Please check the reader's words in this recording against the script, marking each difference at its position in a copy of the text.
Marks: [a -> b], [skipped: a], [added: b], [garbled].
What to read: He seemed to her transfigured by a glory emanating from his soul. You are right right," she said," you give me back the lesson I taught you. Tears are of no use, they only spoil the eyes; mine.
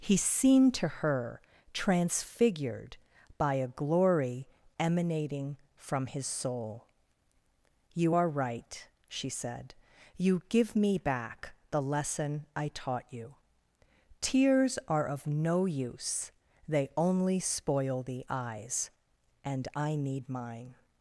He seemed to her transfigured by a glory emanating from his soul. You are right [skipped: right,"] she said," you give me back the lesson I taught you. Tears are of no use, they only spoil the eyes; [added: and I need] mine.